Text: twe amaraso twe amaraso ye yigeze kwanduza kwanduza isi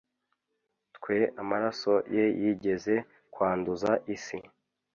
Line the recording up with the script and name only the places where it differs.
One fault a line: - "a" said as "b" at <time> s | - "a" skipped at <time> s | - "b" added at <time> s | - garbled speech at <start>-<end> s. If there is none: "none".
- "twe amaraso" skipped at 1.9 s
- "kwanduza" skipped at 3.9 s